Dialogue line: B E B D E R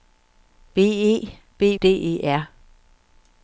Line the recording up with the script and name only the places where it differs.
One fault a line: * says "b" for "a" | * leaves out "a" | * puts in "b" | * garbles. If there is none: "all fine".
all fine